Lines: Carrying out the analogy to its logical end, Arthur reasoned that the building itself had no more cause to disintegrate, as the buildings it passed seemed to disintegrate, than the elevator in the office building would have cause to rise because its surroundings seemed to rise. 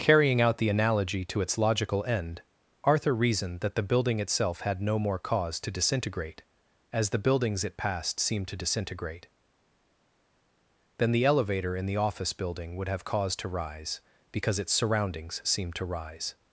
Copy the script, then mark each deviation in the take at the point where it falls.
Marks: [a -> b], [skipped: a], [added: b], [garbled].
Carrying out the analogy to its logical end, Arthur reasoned that the building itself had no more cause to disintegrate, as the buildings it passed seemed to disintegrate, than the elevator in the office building would have cause to rise because its surroundings seemed to rise.